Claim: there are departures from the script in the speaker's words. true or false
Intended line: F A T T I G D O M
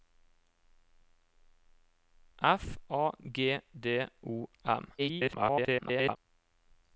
true